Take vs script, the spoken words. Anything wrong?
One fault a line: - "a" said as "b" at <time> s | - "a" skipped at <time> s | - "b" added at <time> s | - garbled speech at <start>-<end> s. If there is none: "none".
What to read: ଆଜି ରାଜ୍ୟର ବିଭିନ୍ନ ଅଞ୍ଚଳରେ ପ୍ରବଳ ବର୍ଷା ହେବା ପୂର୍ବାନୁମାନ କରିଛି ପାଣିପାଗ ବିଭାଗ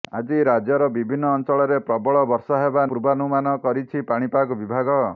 none